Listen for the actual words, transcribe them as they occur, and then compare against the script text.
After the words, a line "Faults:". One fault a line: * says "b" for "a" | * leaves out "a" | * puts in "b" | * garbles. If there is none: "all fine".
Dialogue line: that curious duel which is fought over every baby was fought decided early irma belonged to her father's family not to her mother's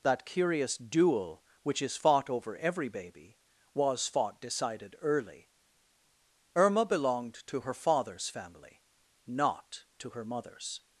that curious duel which is fought over every baby was fought decided early irma belonged to her father's family not to her mother's
Faults:
all fine